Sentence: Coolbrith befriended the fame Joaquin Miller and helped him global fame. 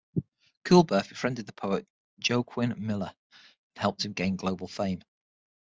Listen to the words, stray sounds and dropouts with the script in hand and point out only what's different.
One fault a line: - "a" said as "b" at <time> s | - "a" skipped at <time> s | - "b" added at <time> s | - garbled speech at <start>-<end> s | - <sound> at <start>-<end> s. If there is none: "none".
- "fame" said as "poet" at 1.5 s
- "gain" added at 4.1 s